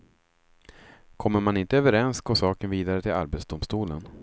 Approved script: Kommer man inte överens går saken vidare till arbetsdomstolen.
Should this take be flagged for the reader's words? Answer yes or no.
no